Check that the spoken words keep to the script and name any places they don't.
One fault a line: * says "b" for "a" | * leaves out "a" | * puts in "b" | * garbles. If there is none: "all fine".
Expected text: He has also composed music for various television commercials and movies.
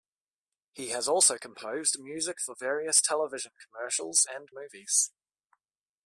all fine